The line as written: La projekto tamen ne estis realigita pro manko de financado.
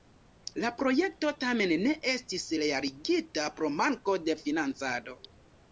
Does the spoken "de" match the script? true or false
true